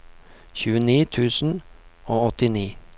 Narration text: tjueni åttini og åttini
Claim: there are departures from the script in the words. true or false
true